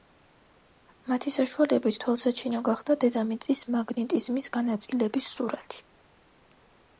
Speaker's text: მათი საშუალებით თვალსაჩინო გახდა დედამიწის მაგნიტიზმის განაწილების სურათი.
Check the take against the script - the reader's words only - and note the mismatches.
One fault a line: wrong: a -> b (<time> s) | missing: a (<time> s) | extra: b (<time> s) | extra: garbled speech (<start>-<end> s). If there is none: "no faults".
no faults